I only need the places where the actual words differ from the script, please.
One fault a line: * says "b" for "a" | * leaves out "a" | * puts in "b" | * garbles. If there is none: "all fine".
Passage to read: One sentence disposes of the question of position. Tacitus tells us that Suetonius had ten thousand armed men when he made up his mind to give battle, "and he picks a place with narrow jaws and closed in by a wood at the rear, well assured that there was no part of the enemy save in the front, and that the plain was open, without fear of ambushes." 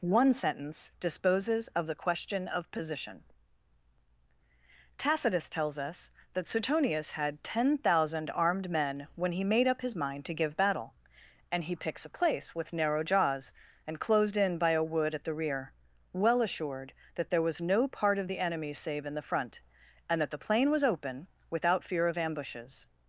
all fine